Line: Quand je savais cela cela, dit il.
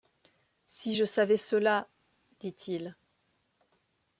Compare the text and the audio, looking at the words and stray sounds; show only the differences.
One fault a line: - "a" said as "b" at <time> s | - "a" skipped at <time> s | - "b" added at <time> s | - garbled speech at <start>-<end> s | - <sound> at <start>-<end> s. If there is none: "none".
- "Quand" said as "Si" at 0.7 s
- "cela" skipped at 1.9 s